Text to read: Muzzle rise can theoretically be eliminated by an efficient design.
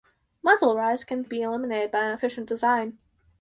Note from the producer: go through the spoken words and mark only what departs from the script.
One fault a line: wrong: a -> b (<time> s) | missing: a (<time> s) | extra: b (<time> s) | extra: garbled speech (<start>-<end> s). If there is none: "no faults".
missing: theoretically (1.2 s)